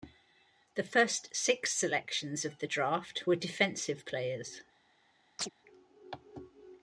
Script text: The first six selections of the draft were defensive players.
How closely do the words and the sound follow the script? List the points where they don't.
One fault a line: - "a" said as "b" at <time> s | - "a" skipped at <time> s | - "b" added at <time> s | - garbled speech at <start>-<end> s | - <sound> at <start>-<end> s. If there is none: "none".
- chirp at 5.4-5.5 s